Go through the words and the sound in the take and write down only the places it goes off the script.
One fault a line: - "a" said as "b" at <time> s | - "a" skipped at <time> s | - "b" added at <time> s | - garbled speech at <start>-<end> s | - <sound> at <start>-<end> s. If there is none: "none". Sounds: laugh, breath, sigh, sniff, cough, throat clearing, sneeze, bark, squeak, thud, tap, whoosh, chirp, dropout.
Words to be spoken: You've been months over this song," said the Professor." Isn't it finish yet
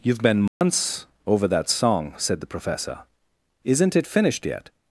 - dropout at 0.5-0.6 s
- "this" said as "that" at 1.5 s
- "finish" said as "finished" at 4.1 s